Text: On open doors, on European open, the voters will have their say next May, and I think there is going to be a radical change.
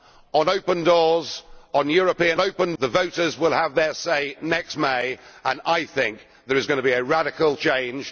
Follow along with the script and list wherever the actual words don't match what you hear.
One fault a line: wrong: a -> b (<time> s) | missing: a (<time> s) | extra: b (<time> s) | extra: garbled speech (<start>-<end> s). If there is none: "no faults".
no faults